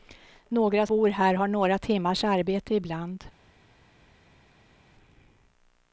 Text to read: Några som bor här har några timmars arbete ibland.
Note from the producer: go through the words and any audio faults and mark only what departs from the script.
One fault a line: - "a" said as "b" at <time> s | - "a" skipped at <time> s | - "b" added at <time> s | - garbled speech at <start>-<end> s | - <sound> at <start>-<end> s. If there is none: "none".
- "som" skipped at 0.9 s